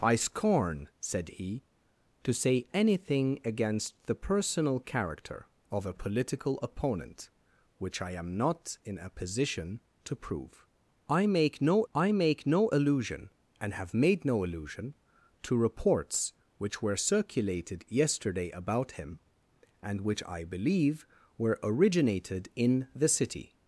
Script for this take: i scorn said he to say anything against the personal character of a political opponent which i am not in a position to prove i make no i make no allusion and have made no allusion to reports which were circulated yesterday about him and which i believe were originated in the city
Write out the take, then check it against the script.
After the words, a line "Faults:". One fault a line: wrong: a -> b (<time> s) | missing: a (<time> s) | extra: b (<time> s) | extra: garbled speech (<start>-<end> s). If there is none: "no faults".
i scorn said he to say anything against the personal character of a political opponent which i am not in a position to prove i make no i make no allusion and have made no allusion to reports which were circulated yesterday about him and which i believe were originated in the city
Faults:
no faults